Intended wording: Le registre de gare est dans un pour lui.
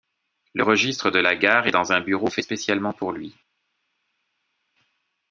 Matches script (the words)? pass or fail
fail